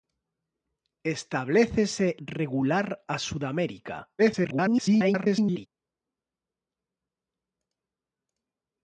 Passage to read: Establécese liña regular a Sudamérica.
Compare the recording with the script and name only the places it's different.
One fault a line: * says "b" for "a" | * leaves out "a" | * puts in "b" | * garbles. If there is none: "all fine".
* leaves out "liña"
* garbles